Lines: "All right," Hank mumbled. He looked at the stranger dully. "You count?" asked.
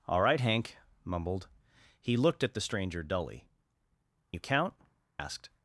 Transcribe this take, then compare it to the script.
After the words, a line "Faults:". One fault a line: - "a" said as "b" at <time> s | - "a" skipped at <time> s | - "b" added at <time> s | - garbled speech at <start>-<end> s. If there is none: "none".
"All right," Hank mumbled. He looked at the stranger dully. "You count?" asked.
Faults:
none